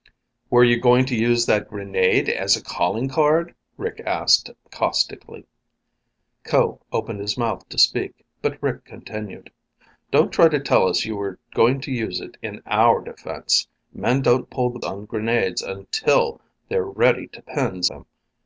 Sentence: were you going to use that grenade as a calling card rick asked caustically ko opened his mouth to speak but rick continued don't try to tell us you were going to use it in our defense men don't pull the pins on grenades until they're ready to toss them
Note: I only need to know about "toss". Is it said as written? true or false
false